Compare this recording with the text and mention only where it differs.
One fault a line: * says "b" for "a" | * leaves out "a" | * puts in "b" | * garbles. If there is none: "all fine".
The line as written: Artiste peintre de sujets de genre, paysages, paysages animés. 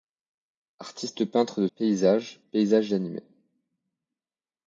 * leaves out "sujets de genre"